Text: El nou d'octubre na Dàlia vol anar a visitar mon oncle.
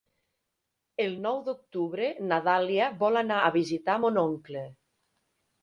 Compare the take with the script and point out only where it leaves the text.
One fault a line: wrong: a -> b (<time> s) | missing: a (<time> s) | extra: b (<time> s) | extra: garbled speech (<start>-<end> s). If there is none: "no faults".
no faults